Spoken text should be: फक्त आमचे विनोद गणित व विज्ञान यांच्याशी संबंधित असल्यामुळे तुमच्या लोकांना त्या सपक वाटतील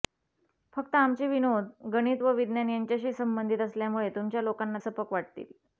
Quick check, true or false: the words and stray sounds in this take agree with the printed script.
false